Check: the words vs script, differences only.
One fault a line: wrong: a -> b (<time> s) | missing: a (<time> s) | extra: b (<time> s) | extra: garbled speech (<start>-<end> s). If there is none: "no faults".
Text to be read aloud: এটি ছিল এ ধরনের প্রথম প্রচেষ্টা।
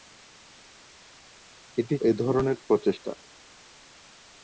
missing: ছিল (1.9 s)
missing: প্রথম (2.6 s)